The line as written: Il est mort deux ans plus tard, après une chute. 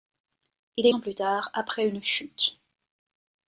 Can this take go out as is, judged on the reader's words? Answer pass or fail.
fail